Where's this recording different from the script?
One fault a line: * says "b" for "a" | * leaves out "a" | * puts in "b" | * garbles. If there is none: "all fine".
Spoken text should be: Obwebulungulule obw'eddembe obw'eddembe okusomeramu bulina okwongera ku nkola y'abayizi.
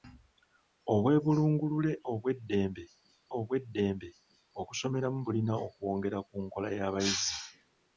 all fine